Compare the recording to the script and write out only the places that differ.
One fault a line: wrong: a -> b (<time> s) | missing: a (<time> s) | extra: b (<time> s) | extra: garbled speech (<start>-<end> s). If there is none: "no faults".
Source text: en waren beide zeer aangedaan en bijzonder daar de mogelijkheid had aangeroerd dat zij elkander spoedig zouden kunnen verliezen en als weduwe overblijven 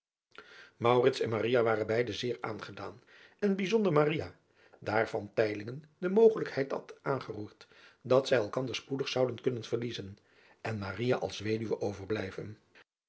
no faults